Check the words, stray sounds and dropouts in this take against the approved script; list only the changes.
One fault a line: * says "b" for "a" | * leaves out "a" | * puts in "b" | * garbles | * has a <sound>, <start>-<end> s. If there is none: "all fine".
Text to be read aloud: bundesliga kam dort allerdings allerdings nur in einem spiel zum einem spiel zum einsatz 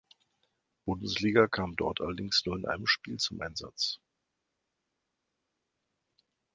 * leaves out "allerdings"
* leaves out "einem spiel zum"